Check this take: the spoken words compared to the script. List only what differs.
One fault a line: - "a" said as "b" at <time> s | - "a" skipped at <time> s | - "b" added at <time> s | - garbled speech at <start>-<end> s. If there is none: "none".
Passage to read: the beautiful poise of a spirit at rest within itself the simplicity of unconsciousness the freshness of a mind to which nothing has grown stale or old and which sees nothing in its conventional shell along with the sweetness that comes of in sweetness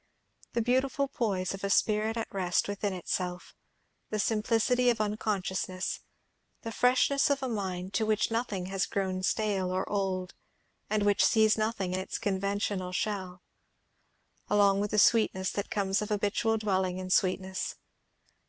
- "habitual dwelling" added at 16.1 s